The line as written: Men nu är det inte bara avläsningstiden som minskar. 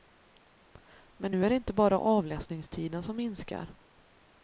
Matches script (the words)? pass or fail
pass